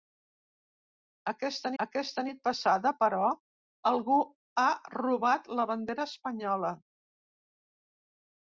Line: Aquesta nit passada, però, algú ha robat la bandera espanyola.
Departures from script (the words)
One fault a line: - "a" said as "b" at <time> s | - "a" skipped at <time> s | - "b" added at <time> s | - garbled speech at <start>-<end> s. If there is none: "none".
- "aquesta" added at 1.8 s